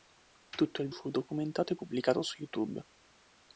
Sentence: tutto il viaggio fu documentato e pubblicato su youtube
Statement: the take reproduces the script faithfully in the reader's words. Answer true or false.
false